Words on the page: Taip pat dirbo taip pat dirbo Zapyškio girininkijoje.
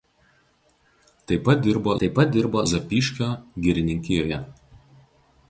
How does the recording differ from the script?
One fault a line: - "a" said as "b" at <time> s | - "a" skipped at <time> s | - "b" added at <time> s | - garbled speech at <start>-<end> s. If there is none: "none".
none